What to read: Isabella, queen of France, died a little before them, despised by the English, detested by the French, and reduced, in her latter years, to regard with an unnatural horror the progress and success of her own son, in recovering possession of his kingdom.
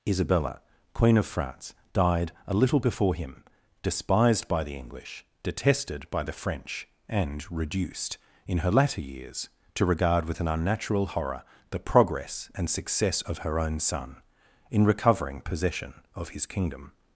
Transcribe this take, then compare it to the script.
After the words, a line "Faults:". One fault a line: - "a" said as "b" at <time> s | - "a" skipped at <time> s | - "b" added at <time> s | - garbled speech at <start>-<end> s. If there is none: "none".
Isabella, queen of France, died a little before him, despised by the English, detested by the French, and reduced, in her latter years, to regard with an unnatural horror the progress and success of her own son, in recovering possession of his kingdom.
Faults:
- "them" said as "him" at 3.1 s